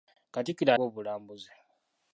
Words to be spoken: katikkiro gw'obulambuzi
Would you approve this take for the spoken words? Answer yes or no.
yes